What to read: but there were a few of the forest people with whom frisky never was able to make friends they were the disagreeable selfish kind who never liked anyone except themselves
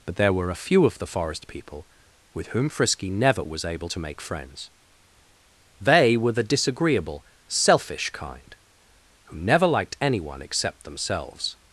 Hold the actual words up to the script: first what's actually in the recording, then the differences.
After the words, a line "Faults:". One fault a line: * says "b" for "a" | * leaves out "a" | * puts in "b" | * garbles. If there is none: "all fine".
but there were a few of the forest people with whom frisky never was able to make friends they were the disagreeable selfish kind who never liked anyone except themselves
Faults:
all fine